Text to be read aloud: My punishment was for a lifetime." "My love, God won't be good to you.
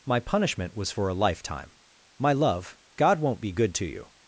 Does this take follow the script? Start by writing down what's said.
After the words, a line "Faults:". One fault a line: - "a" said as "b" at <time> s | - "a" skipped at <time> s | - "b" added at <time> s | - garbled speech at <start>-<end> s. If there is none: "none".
My punishment was for a lifetime." "My love, God won't be good to you.
Faults:
none